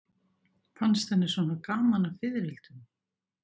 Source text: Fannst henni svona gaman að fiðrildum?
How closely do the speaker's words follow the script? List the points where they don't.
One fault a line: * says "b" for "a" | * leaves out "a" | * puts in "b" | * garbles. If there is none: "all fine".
all fine